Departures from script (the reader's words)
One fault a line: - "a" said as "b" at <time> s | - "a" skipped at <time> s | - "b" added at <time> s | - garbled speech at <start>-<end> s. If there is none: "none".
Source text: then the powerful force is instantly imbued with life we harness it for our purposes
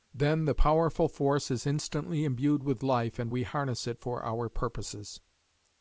- "and" added at 3.2 s